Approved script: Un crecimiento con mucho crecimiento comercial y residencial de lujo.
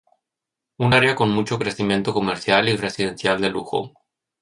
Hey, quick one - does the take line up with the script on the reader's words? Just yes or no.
no